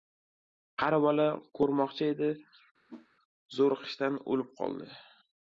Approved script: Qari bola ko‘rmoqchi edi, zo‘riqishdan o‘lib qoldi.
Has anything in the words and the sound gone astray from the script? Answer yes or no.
yes